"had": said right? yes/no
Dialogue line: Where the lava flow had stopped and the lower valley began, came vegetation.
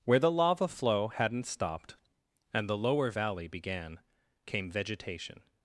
no